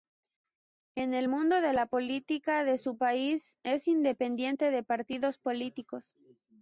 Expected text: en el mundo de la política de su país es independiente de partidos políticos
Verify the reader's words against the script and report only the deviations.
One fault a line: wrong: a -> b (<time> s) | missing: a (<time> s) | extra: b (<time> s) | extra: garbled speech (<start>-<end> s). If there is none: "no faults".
no faults